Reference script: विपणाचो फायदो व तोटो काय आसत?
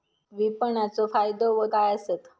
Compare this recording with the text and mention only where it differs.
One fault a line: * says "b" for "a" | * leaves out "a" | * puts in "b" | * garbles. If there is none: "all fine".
* leaves out "तोटो"